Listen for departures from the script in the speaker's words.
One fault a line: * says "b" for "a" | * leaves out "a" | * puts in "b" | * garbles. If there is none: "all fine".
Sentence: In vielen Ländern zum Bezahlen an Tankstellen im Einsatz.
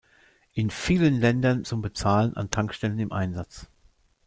all fine